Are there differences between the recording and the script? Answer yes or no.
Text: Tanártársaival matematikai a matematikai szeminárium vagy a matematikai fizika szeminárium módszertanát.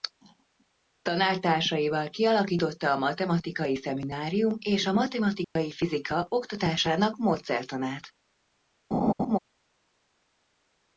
yes